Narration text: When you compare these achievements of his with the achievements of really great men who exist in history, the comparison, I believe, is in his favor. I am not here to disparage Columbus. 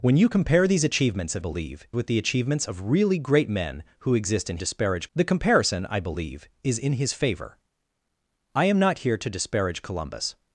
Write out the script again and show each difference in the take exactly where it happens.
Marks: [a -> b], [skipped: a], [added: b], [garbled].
When you compare these achievements of [his -> believe] with the achievements of really great men who exist in [history, -> disparage] the comparison, I believe, is in his favor. I am not here to disparage Columbus.